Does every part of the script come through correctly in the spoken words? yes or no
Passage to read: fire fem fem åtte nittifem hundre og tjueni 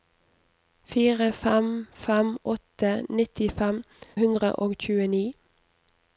yes